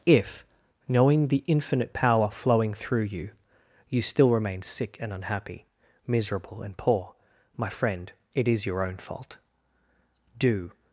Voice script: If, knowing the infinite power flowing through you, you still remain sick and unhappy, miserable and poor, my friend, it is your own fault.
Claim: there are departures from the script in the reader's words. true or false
true